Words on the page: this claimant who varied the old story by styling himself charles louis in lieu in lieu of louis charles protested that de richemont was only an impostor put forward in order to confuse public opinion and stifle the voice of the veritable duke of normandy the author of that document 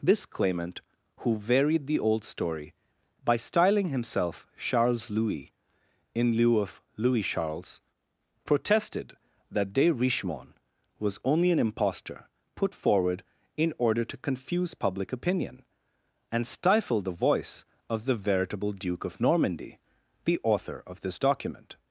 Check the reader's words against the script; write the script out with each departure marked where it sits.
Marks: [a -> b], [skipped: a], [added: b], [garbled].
this claimant who varied the old story by styling himself charles louis in lieu [skipped: in lieu] of louis charles protested that de richemont was only an impostor put forward in order to confuse public opinion and stifle the voice of the veritable duke of normandy the author of [that -> this] document